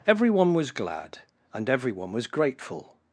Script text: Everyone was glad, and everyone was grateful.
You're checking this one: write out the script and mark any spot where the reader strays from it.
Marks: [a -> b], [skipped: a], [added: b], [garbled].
Everyone was glad, and everyone was grateful.